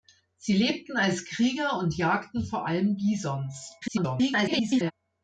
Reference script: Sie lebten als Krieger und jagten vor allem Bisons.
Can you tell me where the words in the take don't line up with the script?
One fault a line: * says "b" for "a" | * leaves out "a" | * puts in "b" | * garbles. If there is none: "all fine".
* garbles